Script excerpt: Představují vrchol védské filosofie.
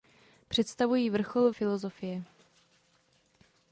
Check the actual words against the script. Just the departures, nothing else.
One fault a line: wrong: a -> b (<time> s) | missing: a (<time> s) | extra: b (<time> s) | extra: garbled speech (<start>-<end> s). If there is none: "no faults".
missing: védské (1.5 s)